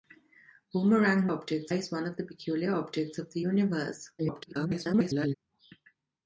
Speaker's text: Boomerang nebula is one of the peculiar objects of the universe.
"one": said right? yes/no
yes